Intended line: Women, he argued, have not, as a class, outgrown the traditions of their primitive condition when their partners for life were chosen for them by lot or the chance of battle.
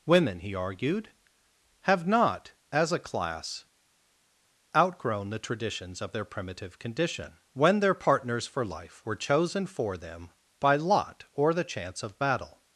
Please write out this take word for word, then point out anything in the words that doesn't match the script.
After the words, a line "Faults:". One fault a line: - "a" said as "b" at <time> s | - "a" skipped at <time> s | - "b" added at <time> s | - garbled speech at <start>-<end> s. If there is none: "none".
Women, he argued, have not, as a class, outgrown the traditions of their primitive condition when their partners for life were chosen for them by lot or the chance of battle.
Faults:
none